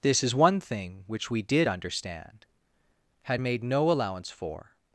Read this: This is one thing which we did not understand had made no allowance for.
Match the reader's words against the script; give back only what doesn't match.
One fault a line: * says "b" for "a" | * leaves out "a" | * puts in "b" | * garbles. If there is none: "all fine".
* leaves out "not"